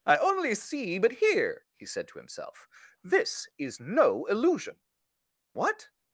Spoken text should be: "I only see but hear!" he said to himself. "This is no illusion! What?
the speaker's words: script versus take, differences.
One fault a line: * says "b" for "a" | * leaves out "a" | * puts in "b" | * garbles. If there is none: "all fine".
all fine